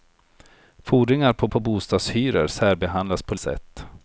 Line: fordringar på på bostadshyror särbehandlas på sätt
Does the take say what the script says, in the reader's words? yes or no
yes